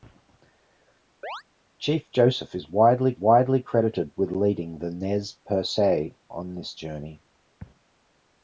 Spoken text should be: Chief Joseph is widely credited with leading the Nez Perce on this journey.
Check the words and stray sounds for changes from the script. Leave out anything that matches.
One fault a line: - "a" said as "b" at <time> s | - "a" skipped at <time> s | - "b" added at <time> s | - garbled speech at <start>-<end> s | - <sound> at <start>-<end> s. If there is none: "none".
- chirp at 1.2-1.4 s
- "widely" added at 3.2 s